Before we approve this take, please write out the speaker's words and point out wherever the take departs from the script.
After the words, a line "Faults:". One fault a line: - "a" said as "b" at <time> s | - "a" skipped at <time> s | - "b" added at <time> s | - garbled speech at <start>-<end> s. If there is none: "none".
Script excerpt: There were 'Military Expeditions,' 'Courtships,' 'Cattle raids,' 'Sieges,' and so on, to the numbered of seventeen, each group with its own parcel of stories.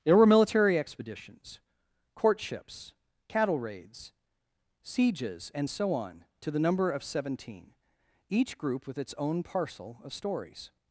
There were 'Military Expeditions,' 'Courtships,' 'Cattle raids,' 'Sieges,' and so on, to the number of seventeen, each group with its own parcel of stories.
Faults:
- "numbered" said as "number" at 6.6 s